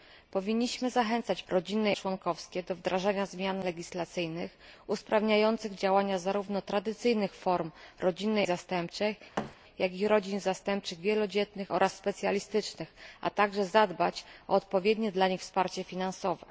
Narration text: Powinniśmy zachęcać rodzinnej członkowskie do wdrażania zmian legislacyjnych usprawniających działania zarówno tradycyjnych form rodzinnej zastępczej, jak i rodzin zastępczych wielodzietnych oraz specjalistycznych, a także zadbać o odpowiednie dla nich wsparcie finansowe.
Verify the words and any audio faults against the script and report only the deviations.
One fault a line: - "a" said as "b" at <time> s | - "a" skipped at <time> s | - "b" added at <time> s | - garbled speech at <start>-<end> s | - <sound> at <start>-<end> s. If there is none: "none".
- thud at 9.4-9.6 s